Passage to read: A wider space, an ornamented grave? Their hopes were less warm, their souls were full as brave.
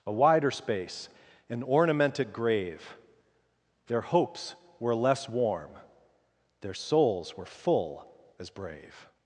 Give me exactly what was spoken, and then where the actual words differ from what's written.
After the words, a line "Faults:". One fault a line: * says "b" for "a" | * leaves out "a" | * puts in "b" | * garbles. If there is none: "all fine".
A wider space, an ornamented grave? Their hopes were less warm, their souls were full as brave.
Faults:
all fine